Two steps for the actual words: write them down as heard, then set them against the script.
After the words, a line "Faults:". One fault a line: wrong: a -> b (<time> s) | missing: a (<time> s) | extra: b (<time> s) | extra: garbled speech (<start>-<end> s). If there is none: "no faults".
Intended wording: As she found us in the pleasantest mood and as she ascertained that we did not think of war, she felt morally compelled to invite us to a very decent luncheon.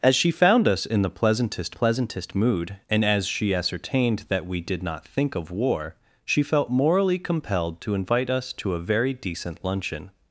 As she found us in the pleasantest pleasantest mood and as she ascertained that we did not think of war, she felt morally compelled to invite us to a very decent luncheon.
Faults:
extra: pleasantest (1.7 s)